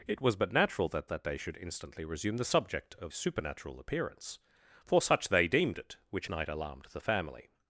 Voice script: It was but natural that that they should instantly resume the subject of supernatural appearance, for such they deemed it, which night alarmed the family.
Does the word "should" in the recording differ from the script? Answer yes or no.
no